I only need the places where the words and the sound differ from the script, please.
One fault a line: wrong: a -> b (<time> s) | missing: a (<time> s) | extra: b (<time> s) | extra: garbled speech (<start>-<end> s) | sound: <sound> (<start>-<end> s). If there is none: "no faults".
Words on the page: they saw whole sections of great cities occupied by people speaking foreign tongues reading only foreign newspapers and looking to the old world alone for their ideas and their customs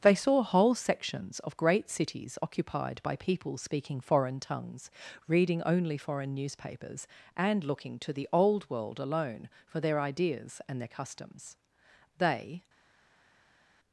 extra: they (12.2 s)